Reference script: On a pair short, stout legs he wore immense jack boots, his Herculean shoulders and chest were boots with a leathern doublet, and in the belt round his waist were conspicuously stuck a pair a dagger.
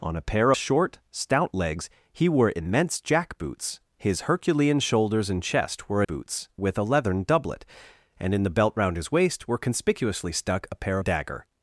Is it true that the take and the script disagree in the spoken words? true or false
false